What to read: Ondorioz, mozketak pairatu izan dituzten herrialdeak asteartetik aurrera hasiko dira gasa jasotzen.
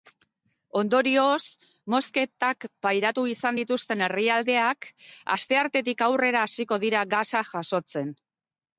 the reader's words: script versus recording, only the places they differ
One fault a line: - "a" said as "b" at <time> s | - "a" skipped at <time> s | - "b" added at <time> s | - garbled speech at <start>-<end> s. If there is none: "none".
none